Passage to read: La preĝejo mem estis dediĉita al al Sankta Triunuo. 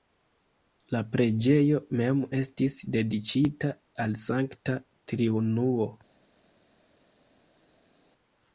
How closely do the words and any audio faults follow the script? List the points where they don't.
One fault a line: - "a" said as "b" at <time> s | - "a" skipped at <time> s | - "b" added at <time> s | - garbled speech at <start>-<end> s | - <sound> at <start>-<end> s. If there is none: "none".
- "al" skipped at 4.2 s